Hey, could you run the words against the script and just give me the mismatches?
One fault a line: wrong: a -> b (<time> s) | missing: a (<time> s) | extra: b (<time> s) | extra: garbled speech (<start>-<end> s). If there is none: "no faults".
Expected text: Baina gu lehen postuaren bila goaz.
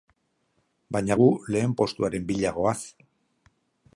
no faults